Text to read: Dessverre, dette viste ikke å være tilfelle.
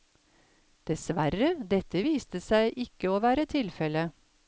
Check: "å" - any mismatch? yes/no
no